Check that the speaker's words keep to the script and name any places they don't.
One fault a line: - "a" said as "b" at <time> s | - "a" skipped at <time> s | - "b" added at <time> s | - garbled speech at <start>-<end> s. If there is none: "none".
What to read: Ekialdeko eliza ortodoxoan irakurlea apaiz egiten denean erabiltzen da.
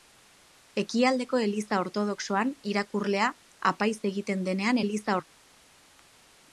- "erabiltzen" said as "eliza" at 4.8 s